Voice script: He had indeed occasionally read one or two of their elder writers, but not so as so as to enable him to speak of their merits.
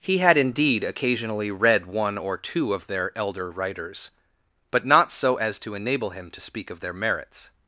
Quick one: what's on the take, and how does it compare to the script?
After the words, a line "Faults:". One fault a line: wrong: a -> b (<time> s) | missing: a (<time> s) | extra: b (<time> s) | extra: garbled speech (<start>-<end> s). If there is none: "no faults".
He had indeed occasionally read one or two of their elder writers, but not so as to enable him to speak of their merits.
Faults:
missing: so as (5.6 s)